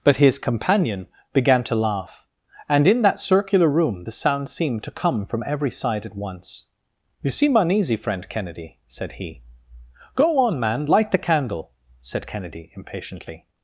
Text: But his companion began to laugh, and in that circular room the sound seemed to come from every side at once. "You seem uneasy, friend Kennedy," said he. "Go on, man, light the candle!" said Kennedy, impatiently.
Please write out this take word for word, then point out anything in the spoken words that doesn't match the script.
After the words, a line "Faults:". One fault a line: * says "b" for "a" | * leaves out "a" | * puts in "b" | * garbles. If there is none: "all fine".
But his companion began to laugh, and in that circular room the sound seemed to come from every side at once. "You seem uneasy, friend Kennedy," said he. "Go on, man, light the candle!" said Kennedy, impatiently.
Faults:
all fine